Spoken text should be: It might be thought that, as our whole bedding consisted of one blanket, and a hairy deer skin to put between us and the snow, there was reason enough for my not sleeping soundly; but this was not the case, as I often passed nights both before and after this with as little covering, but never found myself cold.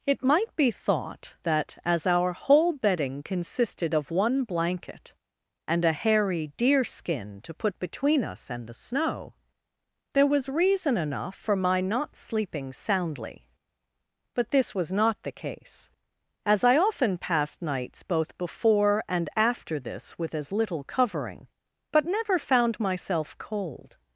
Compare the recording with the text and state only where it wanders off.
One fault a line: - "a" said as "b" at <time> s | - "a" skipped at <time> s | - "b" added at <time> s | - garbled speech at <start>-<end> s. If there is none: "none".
none